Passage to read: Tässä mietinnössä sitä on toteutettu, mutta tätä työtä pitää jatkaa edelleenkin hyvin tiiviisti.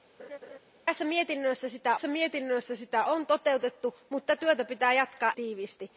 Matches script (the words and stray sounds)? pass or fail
fail